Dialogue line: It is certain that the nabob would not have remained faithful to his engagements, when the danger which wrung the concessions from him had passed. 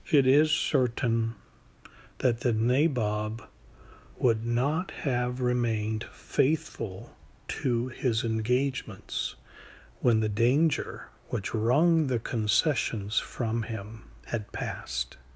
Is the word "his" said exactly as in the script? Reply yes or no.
yes